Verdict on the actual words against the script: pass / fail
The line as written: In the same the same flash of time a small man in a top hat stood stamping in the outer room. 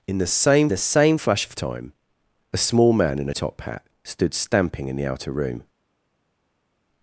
pass